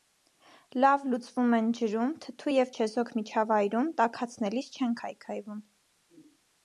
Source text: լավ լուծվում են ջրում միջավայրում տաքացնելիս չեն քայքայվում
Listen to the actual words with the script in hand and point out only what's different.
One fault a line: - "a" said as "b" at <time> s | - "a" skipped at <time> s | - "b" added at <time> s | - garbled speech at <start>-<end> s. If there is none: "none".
- "թթու և չեզոք" added at 2.2 s